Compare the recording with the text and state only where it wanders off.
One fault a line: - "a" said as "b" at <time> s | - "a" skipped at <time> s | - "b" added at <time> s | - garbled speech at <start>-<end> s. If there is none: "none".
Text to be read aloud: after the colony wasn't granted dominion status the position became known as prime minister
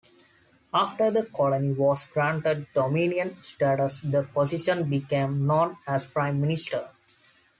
- "wasn't" said as "was" at 1.7 s